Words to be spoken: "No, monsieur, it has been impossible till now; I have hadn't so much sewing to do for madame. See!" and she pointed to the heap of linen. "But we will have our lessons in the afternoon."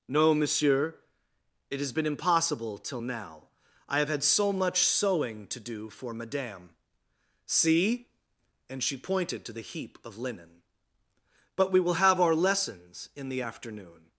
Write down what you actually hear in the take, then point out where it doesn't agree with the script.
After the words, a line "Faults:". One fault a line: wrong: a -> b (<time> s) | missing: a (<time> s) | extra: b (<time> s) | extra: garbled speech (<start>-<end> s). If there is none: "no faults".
"No, monsieur, it has been impossible till now; I have had so much sewing to do for madame. See!" and she pointed to the heap of linen. "But we will have our lessons in the afternoon."
Faults:
wrong: hadn't -> had (4.1 s)